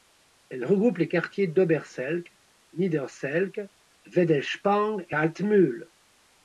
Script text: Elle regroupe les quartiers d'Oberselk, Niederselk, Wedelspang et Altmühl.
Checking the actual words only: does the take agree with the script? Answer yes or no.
yes